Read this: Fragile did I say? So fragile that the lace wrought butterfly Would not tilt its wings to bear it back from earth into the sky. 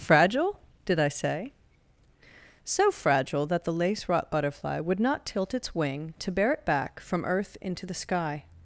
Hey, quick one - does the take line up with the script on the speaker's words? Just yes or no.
no